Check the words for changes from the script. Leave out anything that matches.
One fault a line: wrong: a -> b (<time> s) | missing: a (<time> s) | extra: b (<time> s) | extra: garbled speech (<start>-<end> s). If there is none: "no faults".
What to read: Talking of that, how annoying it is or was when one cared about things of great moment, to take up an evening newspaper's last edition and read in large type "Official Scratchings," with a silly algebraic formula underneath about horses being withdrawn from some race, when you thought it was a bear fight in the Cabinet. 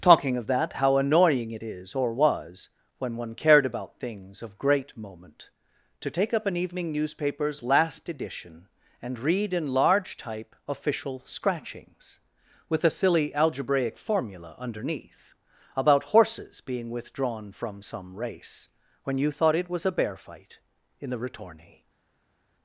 wrong: Cabinet -> Ritorni (21.2 s)